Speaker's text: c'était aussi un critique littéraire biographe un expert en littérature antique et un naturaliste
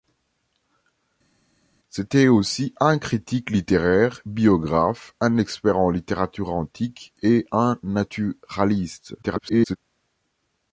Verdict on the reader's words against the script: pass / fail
fail